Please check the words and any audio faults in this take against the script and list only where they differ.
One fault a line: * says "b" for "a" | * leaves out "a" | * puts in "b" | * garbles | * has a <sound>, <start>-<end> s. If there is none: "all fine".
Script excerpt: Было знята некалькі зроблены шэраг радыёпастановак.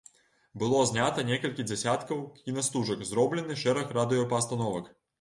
* puts in "дзясяткаў кінастужак"